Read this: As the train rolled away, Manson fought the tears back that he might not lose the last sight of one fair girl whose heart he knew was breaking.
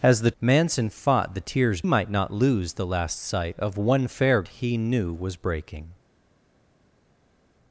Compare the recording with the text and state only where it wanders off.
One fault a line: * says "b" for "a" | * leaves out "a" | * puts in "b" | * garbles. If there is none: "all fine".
* leaves out "train rolled away"
* leaves out "back that he"
* leaves out "girl whose heart"